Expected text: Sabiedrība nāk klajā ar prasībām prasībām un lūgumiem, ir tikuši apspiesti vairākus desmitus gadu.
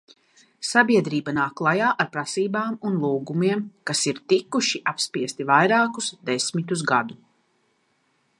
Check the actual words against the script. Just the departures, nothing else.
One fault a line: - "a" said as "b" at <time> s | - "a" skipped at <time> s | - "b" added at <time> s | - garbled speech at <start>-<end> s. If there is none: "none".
- "prasībām" skipped at 2.8 s
- "kas" added at 3.9 s